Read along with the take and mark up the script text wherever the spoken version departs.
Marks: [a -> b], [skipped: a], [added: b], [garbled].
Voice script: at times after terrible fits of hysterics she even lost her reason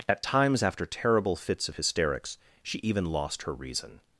at times after terrible fits of hysterics she even lost her reason